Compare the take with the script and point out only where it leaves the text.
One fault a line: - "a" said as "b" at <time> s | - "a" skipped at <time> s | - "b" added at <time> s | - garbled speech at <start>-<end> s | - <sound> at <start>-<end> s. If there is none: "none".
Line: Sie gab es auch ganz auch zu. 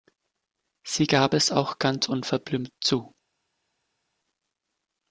- "auch" said as "unverblümt" at 2.1 s